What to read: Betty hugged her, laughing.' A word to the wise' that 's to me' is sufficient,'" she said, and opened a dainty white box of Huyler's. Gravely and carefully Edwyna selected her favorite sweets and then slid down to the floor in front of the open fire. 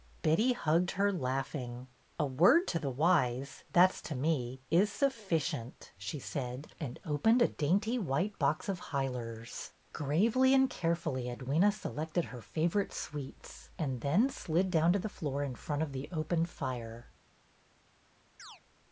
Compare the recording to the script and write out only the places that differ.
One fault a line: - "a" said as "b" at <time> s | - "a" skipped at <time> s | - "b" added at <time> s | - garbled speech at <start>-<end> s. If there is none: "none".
none